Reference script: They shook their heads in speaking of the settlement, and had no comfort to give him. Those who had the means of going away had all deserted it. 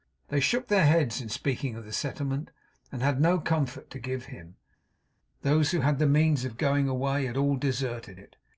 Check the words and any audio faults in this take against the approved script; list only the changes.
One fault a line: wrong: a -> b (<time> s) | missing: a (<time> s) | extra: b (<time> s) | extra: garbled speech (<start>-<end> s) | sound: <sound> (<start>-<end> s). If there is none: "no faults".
no faults